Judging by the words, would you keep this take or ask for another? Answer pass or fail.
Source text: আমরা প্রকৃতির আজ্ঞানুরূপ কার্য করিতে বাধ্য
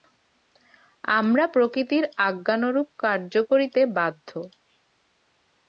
pass